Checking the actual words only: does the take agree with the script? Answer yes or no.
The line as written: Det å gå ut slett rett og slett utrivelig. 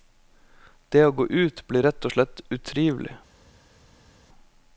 no